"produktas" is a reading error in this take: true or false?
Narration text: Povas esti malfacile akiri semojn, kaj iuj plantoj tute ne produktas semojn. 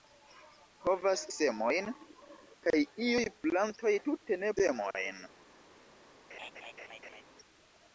true